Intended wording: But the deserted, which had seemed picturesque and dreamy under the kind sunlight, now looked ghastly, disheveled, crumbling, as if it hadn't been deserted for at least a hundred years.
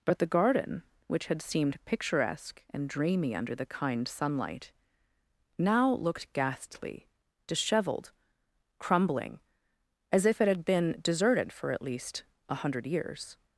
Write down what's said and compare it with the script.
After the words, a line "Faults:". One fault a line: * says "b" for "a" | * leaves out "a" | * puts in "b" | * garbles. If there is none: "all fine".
But the garden, which had seemed picturesque and dreamy under the kind sunlight, now looked ghastly, disheveled, crumbling, as if it had been deserted for at least a hundred years.
Faults:
* says "garden" for "deserted"
* says "had" for "hadn't"